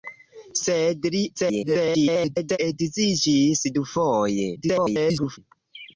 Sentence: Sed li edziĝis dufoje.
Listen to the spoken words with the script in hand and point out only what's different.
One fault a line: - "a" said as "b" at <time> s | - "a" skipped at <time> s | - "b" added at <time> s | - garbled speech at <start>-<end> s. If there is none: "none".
- garbled speech at 1.3-2.6 s
- garbled speech at 4.6-5.4 s